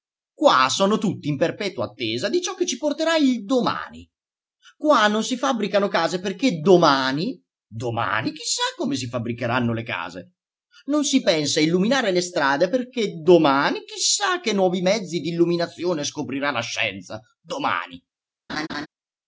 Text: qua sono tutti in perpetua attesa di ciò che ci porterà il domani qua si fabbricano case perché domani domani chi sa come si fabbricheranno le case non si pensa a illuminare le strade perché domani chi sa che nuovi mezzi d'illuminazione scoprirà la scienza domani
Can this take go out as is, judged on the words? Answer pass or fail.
fail